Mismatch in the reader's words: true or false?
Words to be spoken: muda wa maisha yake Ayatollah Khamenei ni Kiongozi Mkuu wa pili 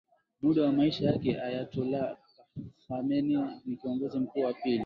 false